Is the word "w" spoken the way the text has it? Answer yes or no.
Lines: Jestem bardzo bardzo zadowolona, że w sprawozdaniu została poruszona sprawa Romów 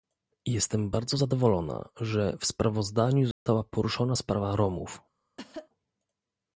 yes